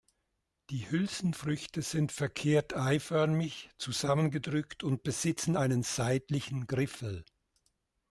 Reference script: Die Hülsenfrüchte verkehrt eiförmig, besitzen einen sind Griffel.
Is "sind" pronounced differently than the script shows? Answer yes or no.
yes